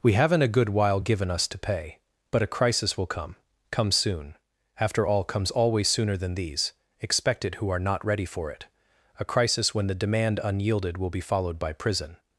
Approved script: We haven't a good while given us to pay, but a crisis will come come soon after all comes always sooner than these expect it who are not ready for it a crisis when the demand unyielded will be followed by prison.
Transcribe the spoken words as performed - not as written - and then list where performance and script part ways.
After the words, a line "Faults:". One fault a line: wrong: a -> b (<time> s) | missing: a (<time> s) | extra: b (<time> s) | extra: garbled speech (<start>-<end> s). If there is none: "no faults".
We haven't a good while given us to pay, but a crisis will come come soon after all comes always sooner than these expect it who are not ready for it a crisis when the demand unyielded will be followed by prison.
Faults:
no faults